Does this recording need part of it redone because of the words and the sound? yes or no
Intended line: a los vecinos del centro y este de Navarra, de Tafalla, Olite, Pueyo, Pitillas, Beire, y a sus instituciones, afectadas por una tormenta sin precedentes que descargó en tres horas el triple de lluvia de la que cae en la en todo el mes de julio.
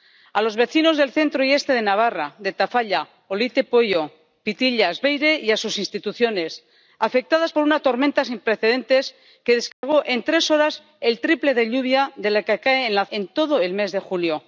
yes